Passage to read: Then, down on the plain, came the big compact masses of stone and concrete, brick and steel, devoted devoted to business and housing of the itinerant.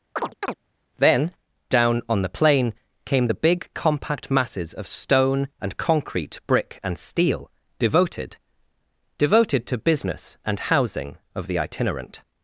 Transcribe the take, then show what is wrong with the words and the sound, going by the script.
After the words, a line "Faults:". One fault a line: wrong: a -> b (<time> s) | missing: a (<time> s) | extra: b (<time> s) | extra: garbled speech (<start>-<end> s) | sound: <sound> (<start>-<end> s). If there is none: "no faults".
Then, down on the plain, came the big compact masses of stone and concrete, brick and steel, devoted devoted to business and housing of the itinerant.
Faults:
sound: chirp (0.2-0.5 s)